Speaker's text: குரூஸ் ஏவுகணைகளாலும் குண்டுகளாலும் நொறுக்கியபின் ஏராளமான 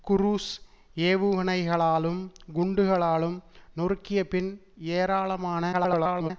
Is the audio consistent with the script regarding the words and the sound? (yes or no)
no